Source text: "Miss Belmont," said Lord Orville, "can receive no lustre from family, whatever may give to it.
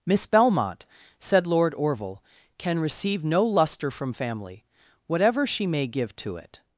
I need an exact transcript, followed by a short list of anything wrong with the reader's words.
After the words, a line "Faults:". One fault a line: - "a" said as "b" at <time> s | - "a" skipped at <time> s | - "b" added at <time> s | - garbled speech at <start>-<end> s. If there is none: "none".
"Miss Belmont," said Lord Orville, "can receive no lustre from family, whatever she may give to it.
Faults:
- "she" added at 5.4 s